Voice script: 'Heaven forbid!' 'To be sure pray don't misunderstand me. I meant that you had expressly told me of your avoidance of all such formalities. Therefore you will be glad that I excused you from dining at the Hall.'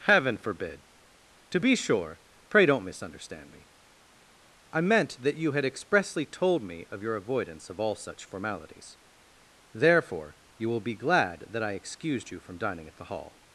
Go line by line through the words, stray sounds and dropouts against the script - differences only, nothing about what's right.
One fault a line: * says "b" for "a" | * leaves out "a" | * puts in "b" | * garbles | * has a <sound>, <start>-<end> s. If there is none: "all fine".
all fine